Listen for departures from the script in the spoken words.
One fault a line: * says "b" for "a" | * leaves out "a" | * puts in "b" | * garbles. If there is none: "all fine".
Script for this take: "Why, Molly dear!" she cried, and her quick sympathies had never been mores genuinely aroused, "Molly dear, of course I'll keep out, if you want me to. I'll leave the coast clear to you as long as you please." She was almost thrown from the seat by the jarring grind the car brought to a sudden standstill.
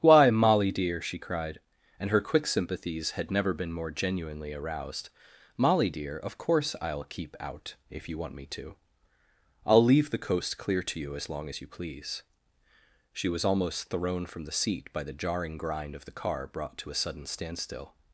* says "more" for "mores"
* puts in "of"